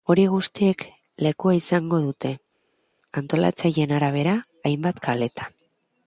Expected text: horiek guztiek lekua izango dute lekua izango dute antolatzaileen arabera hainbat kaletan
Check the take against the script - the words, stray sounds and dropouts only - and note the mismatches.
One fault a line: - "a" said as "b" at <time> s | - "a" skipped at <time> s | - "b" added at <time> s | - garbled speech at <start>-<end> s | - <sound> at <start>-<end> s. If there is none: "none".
- "lekua izango dute" skipped at 2.3 s